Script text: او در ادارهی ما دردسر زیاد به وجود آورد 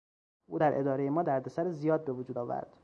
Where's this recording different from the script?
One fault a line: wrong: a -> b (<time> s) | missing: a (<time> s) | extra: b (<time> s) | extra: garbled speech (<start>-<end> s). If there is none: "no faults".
no faults